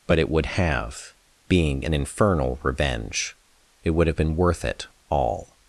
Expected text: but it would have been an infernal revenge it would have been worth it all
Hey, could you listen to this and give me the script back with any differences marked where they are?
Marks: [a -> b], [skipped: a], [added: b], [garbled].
but it would have [been -> being] an infernal revenge it would have been worth it all